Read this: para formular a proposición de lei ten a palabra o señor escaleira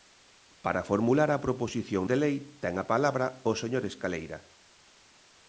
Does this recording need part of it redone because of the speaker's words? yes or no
no